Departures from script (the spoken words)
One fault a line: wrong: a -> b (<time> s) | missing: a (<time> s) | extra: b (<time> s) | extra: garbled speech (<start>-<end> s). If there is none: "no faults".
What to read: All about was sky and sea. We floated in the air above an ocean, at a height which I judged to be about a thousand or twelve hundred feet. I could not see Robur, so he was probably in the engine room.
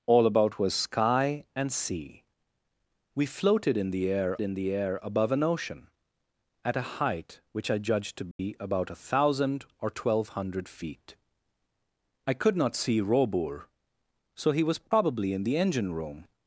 extra: in the air (4.4 s)